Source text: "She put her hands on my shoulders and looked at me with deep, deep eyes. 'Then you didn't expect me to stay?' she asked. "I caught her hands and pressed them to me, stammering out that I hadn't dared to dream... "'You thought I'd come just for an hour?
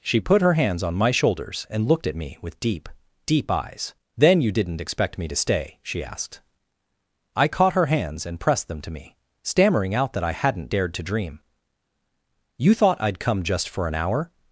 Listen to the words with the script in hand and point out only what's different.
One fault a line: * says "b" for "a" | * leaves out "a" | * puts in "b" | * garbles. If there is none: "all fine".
all fine